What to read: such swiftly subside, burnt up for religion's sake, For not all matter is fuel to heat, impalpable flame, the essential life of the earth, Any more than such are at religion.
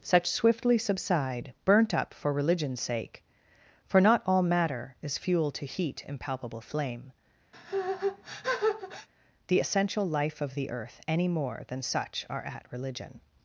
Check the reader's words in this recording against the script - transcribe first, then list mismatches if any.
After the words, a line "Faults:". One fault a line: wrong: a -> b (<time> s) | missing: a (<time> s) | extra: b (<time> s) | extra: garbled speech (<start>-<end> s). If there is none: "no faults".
such swiftly subside, burnt up for religion's sake, For not all matter is fuel to heat, impalpable flame, the essential life of the earth, Any more than such are at religion.
Faults:
no faults